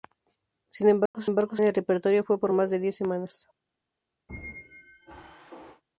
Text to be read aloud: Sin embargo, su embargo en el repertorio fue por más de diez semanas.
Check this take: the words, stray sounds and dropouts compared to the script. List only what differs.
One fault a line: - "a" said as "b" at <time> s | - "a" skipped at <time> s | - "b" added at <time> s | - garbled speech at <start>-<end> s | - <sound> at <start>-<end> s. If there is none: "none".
- dropout at 1.1-1.1 s
- squeak at 4.3-5.8 s